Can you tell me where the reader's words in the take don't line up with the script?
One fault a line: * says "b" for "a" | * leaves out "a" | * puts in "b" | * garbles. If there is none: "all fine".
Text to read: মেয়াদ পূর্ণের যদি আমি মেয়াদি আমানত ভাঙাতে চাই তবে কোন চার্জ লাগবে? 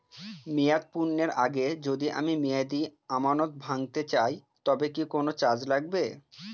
* puts in "আগে"
* puts in "কি"